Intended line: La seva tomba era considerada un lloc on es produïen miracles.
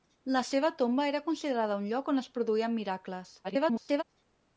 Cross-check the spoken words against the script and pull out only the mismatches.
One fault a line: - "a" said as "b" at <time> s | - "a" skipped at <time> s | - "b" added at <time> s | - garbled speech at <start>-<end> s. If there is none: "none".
- garbled speech at 3.4-4.0 s